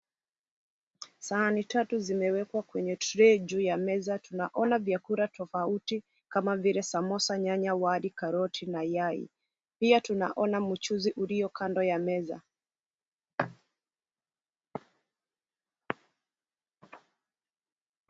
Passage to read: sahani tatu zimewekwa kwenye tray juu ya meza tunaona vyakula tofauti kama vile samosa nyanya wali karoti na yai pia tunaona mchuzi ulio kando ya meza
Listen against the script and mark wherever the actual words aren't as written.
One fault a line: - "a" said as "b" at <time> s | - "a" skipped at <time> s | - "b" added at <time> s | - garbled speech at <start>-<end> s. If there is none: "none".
none